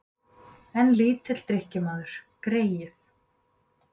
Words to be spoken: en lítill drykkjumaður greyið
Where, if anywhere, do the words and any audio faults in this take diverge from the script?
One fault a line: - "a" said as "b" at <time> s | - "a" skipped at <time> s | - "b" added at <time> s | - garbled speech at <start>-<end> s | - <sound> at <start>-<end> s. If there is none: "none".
none